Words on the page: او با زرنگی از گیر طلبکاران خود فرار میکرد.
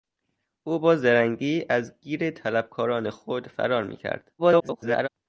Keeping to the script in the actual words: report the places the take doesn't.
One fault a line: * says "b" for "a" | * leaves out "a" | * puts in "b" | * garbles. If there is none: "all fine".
* garbles